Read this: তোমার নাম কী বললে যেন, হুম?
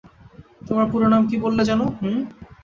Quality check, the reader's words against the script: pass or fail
fail